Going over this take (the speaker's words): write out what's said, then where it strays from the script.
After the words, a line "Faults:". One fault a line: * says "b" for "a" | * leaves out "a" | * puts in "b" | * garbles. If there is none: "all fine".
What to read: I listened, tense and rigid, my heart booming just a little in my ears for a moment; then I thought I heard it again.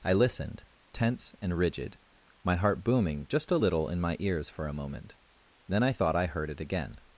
I listened, tense and rigid, my heart booming just a little in my ears for a moment; then I thought I heard it again.
Faults:
all fine